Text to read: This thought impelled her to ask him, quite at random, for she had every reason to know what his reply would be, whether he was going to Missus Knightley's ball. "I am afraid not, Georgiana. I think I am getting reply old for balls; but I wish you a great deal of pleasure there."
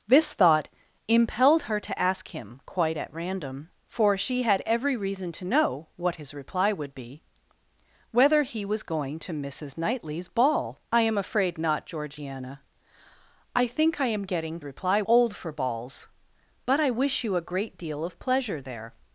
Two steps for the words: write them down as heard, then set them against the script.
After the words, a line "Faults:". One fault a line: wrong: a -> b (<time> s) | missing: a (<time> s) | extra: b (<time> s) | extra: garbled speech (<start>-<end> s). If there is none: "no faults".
This thought impelled her to ask him, quite at random, for she had every reason to know what his reply would be, whether he was going to Missus Knightley's ball. "I am afraid not, Georgiana. I think I am getting reply old for balls; but I wish you a great deal of pleasure there."
Faults:
no faults